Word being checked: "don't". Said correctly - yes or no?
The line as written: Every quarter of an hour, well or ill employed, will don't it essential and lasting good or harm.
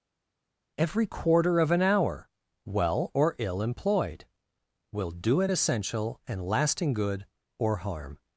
no